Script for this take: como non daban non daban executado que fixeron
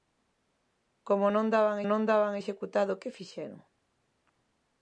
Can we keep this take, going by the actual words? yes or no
yes